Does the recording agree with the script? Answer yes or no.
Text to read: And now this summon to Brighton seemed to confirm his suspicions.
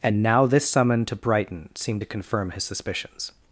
yes